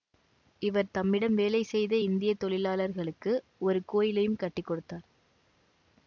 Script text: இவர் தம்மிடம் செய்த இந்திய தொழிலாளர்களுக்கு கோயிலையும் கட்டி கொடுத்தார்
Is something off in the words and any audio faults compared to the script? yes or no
yes